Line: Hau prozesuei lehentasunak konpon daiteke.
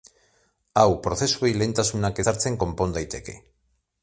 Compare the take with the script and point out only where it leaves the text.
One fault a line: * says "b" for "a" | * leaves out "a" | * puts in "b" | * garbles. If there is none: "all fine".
* puts in "ezartzen"